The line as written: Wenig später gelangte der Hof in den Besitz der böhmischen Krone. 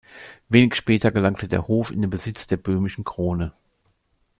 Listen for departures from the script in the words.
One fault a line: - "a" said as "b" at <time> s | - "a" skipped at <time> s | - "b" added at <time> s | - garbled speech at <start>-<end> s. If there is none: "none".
none